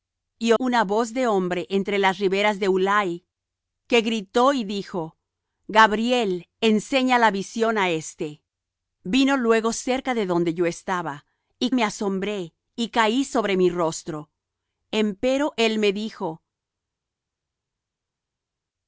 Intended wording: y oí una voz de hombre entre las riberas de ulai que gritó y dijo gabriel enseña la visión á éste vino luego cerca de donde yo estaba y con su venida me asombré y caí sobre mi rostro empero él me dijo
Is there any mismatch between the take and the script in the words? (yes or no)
yes